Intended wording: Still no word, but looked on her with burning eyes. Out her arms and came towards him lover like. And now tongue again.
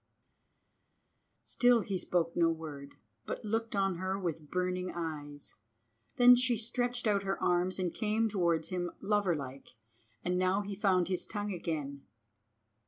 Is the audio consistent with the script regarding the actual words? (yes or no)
no